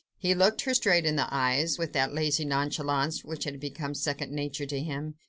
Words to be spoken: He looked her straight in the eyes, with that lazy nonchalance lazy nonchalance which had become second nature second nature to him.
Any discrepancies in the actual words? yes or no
yes